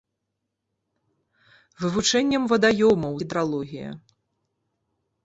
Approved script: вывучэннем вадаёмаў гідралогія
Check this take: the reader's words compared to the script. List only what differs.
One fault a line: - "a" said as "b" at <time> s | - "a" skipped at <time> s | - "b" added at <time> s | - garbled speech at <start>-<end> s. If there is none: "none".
none